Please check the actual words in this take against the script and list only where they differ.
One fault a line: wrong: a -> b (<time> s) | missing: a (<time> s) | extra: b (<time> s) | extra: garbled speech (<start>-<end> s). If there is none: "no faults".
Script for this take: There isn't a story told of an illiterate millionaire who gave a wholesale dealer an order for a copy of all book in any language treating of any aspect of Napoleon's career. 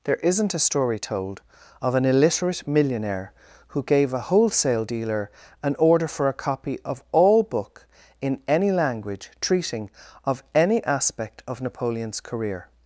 no faults